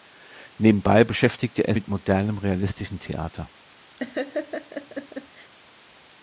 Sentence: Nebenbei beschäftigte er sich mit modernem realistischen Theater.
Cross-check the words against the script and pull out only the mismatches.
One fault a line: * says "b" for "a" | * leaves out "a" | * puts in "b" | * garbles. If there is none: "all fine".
* leaves out "sich"